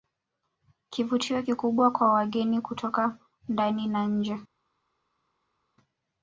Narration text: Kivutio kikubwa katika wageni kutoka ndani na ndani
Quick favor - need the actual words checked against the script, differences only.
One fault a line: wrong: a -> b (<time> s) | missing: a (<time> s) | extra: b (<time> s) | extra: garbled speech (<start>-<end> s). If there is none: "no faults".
wrong: katika -> kwa (1.9 s)
wrong: ndani -> nje (4.1 s)